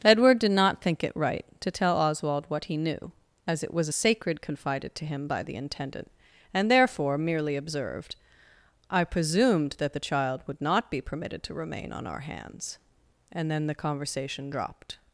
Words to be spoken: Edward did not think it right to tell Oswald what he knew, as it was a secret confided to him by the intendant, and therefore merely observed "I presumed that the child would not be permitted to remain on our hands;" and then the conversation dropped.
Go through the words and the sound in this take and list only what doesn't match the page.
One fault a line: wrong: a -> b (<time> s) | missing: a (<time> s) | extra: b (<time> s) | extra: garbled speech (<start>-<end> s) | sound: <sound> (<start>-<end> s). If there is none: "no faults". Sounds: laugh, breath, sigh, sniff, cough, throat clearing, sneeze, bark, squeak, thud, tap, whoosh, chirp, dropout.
wrong: secret -> sacred (3.9 s)